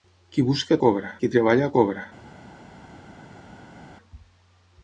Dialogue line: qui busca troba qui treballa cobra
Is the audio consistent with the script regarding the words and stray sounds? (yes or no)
no